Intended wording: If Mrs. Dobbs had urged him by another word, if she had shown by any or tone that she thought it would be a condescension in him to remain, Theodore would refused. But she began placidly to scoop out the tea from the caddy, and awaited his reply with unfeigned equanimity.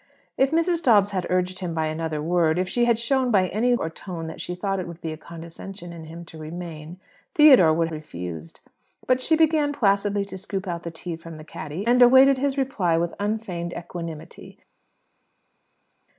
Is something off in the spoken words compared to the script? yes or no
no